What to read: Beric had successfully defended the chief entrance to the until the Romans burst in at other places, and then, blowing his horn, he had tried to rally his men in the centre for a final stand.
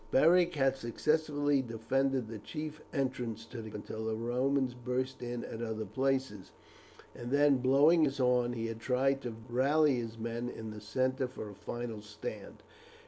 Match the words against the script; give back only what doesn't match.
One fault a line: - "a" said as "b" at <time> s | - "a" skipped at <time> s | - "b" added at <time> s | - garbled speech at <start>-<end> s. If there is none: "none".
none